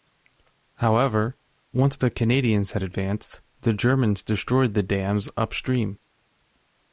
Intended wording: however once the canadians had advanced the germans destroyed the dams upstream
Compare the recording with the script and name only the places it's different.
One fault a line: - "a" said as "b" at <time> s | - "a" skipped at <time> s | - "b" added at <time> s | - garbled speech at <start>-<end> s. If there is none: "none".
none